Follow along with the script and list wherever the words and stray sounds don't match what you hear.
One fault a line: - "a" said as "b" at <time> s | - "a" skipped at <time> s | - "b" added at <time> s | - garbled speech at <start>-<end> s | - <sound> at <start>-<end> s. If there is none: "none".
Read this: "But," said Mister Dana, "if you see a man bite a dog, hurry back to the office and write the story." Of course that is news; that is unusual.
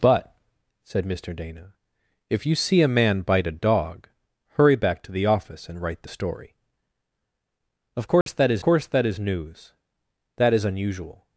- dropout at 8.2-8.3 s
- "course that is" added at 8.6 s